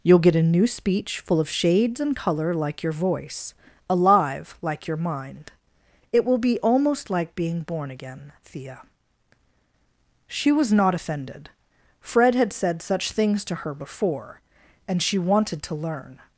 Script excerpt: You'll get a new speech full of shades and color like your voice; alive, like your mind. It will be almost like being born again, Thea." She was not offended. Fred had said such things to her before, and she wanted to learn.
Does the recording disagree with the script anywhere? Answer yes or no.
no